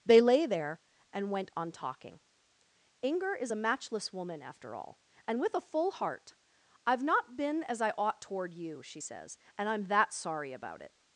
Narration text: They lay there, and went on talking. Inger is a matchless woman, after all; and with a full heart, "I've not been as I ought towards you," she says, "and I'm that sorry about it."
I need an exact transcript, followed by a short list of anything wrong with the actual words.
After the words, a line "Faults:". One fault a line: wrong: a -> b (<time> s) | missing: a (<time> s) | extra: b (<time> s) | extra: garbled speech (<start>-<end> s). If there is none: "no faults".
They lay there, and went on talking. Inger is a matchless woman, after all; and with a full heart, "I've not been as I ought toward you," she says, "and I'm that sorry about it."
Faults:
wrong: towards -> toward (8.2 s)